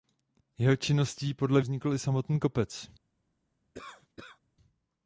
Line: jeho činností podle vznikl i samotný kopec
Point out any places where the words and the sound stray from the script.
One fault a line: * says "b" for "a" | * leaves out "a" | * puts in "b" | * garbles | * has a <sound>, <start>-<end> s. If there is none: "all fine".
* has a cough, 3.7-4.4 s